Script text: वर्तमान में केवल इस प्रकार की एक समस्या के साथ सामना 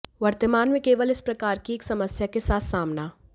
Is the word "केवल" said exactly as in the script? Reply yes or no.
yes